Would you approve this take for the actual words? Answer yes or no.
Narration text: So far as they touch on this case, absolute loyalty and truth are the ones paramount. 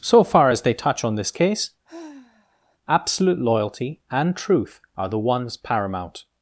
yes